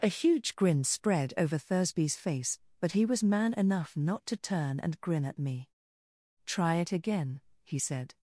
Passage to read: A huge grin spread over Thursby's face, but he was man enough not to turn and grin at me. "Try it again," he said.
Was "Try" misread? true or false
false